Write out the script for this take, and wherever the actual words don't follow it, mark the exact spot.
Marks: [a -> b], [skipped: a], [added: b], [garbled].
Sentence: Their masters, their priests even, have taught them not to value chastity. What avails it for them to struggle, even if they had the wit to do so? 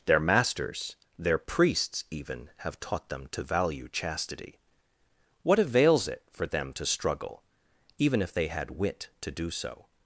Their masters, their priests even, have taught them [skipped: not] to value chastity. What avails it for them to struggle, even if they had [skipped: the] wit to do so?